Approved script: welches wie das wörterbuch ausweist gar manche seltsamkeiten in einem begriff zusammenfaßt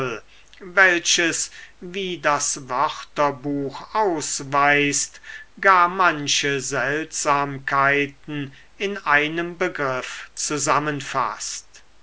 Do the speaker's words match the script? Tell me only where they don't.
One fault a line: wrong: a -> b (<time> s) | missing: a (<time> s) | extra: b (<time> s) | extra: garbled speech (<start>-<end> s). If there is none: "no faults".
no faults